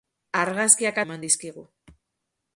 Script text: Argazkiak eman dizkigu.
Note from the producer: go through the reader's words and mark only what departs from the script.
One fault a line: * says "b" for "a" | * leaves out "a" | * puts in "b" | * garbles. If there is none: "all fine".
all fine